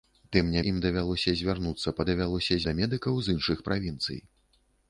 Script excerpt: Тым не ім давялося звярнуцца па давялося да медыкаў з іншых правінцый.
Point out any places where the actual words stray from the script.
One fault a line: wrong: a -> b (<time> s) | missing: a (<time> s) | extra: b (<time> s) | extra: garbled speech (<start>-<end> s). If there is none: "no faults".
no faults